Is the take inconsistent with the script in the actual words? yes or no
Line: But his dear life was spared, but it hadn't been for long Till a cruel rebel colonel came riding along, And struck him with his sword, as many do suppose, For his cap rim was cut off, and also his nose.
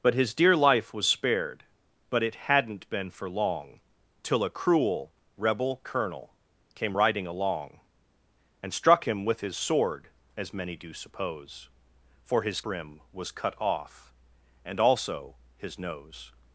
yes